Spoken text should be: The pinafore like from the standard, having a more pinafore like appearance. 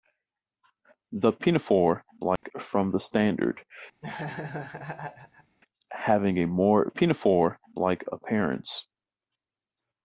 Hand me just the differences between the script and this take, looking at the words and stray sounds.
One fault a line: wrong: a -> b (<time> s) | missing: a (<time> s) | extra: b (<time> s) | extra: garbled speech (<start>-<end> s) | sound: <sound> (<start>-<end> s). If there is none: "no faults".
sound: dropout (2.4-2.4 s)
sound: laugh (4.0-5.6 s)